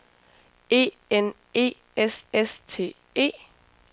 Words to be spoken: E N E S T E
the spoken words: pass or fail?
fail